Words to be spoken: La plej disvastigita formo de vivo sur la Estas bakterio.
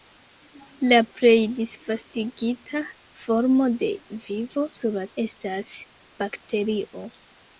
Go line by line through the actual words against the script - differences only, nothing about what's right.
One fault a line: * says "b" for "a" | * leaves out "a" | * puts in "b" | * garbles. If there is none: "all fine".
all fine